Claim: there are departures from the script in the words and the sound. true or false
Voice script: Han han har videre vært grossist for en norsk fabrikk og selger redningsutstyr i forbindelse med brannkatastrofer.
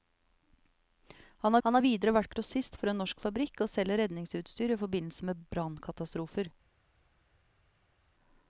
false